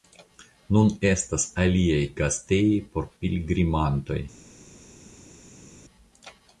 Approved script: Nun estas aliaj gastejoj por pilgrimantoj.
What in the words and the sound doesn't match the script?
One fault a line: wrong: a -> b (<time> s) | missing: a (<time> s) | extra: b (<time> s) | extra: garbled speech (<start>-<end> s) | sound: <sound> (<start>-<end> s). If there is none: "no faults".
no faults